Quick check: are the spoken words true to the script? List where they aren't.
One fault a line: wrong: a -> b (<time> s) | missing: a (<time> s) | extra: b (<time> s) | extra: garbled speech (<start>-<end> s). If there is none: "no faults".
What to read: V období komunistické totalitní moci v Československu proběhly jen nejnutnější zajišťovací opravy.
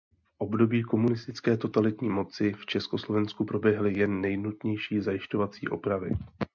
no faults